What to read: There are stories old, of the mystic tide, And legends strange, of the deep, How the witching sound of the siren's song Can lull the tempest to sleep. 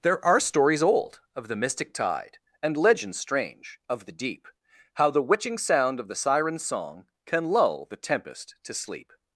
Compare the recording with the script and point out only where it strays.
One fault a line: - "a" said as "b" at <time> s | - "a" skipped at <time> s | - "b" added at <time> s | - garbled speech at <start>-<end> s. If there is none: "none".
none